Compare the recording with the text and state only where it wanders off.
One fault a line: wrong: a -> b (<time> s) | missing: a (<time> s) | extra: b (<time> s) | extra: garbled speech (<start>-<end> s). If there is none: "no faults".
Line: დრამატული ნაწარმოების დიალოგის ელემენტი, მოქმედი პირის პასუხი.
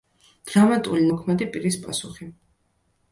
missing: ნაწარმოების დიალოგის ელემენტი (1.0 s)